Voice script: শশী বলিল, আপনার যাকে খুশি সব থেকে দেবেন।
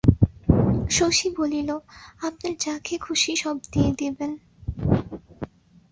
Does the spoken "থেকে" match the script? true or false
false